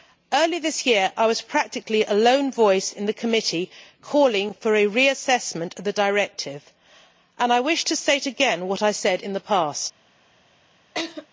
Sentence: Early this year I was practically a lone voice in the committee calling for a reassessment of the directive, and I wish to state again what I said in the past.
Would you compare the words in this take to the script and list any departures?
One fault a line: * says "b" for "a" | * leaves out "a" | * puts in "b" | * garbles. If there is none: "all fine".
all fine